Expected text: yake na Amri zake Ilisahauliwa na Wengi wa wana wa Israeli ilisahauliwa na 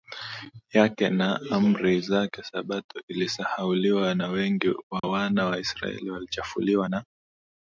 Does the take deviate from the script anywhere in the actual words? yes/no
yes